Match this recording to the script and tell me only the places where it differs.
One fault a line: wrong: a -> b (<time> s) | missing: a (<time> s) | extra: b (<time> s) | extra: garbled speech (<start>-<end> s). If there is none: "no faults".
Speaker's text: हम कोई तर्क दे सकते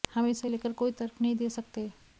extra: इसे लेकर (0.3 s)
extra: नहीं (1.2 s)